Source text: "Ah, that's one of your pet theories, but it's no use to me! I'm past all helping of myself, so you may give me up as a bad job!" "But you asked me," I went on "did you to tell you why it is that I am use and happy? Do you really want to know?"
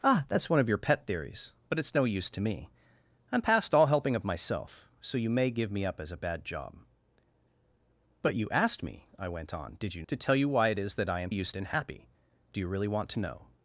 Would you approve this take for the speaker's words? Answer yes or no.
yes